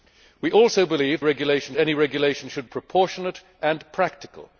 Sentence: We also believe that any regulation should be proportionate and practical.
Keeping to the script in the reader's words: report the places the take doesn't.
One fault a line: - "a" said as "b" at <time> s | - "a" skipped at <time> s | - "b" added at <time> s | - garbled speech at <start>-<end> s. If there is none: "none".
- "that" said as "regulation" at 1.2 s
- "be" skipped at 2.7 s